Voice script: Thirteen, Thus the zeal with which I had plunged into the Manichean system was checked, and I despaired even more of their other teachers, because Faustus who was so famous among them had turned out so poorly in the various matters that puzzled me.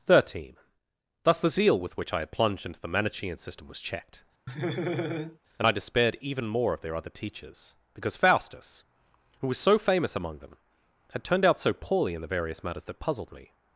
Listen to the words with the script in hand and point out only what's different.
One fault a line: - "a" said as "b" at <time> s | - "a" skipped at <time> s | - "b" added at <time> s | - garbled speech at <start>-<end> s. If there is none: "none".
none